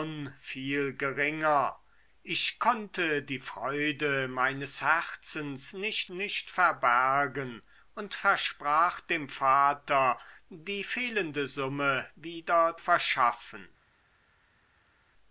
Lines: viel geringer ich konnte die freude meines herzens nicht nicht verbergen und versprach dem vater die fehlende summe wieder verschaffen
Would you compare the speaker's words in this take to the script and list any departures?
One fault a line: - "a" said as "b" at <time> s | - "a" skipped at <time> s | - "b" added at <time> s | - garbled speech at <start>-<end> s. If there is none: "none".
none